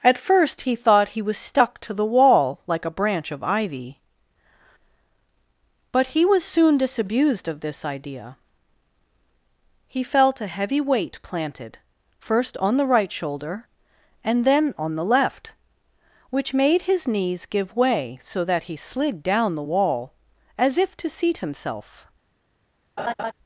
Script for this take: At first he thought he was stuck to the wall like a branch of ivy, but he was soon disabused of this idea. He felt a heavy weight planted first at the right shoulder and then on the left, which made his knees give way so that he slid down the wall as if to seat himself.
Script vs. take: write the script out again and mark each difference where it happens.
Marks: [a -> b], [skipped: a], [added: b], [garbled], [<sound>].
At first he thought he was stuck to the wall like a branch of ivy, but he was soon disabused of this idea. He felt a heavy weight planted first [at -> on] the right shoulder and then on the left, which made his knees give way so that he slid down the wall as if to seat himself. [laugh]